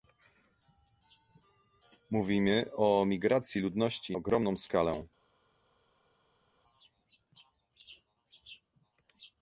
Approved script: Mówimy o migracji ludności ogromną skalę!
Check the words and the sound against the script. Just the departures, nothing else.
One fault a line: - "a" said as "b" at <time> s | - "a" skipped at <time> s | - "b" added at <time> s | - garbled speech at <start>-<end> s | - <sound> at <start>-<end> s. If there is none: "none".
none